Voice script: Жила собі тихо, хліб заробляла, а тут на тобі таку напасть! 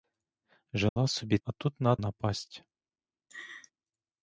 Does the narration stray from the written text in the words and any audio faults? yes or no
yes